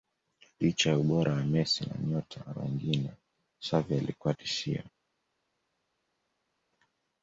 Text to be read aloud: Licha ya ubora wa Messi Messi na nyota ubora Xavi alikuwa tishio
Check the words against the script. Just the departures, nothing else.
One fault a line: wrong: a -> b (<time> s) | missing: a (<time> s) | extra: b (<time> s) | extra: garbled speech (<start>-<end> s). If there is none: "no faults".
missing: Messi (1.9 s)
wrong: ubora -> wengine (2.5 s)